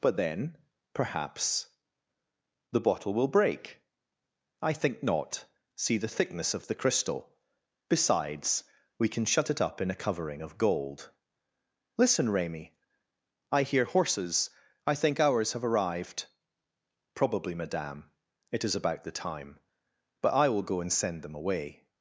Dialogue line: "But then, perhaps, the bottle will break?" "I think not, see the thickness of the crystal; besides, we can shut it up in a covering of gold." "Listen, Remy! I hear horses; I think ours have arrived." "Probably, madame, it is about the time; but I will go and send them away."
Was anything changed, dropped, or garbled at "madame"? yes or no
no